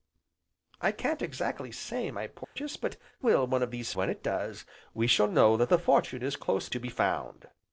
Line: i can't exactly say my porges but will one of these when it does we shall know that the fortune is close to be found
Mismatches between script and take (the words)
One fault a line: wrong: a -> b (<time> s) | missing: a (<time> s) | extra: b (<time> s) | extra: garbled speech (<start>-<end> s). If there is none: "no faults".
no faults